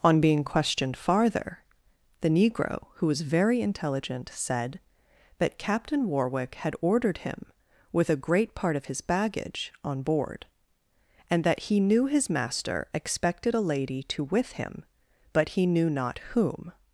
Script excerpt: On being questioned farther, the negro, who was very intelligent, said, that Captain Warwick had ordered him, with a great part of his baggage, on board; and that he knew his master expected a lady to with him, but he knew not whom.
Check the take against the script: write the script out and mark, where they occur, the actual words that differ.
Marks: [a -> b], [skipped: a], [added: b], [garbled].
On being questioned farther, the negro, who was very intelligent, said, that Captain Warwick had ordered him, with a great part of his baggage, on board; and that he knew his master expected a lady to with him, but he knew not whom.